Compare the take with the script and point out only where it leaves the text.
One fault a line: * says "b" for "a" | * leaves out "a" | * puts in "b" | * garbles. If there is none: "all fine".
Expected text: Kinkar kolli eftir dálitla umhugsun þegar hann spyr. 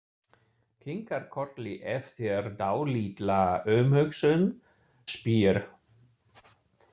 * leaves out "þegar hann"